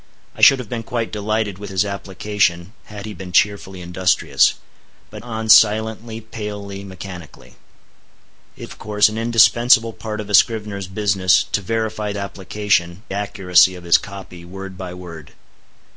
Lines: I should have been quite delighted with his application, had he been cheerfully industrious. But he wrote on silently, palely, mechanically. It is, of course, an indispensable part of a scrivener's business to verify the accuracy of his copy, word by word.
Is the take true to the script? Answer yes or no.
no